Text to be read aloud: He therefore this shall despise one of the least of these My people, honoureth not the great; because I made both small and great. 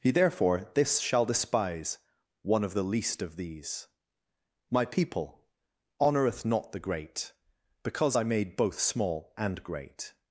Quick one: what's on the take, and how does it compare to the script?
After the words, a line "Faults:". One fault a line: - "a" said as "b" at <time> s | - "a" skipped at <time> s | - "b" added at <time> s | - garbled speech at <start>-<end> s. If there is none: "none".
He therefore this shall despise one of the least of these My people, honoureth not the great; because I made both small and great.
Faults:
none